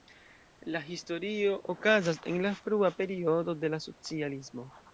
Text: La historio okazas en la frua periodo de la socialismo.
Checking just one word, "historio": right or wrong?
right